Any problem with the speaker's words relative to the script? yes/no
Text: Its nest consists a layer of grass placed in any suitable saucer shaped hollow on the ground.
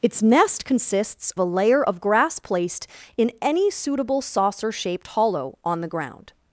no